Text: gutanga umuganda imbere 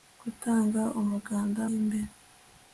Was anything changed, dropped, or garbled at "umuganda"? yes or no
no